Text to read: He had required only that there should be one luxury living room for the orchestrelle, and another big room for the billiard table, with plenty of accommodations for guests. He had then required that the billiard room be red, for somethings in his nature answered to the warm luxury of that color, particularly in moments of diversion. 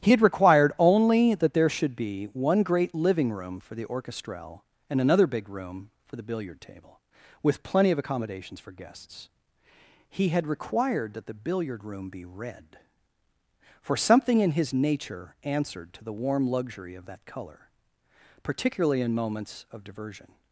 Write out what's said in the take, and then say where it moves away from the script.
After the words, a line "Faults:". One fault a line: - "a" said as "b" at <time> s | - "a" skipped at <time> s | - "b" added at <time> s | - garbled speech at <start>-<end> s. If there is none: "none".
He had required only that there should be one great living room for the orchestrelle, and another big room for the billiard table, with plenty of accommodations for guests. He had required that the billiard room be red, for something in his nature answered to the warm luxury of that color, particularly in moments of diversion.
Faults:
- "luxury" said as "great" at 2.6 s
- "then" skipped at 10.5 s
- "somethings" said as "something" at 13.9 s